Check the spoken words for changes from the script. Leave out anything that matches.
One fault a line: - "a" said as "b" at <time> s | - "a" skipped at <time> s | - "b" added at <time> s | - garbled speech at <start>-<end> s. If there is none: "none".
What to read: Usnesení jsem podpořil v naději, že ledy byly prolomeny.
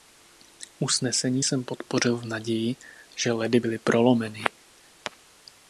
none